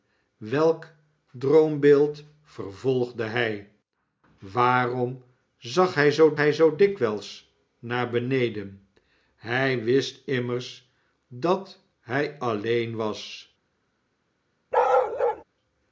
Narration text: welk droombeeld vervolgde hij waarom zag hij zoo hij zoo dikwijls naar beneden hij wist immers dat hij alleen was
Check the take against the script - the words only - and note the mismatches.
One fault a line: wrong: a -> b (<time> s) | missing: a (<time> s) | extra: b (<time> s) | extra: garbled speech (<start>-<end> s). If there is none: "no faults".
no faults